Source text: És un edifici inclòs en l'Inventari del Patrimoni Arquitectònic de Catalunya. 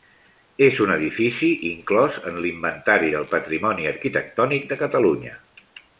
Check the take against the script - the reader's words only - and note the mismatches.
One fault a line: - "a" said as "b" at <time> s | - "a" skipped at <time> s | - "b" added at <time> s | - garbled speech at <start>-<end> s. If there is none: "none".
none